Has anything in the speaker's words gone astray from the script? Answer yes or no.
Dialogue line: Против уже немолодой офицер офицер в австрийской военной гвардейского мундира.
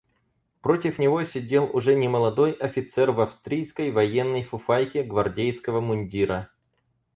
yes